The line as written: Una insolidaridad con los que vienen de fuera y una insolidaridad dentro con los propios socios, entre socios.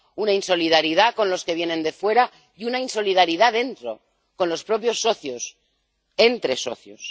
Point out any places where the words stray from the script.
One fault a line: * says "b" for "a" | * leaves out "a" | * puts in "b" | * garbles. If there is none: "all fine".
all fine